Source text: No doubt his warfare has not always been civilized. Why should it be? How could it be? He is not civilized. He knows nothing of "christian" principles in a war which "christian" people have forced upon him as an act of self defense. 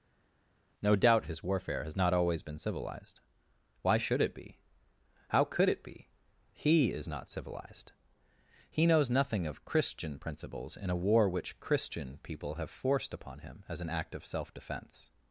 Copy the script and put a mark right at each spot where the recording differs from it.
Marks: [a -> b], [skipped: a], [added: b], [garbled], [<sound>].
No doubt his warfare has not always been civilized. Why should it be? How could it be? He is not civilized. He knows nothing of "christian" principles in a war which "christian" people have forced upon him as an act of self defense.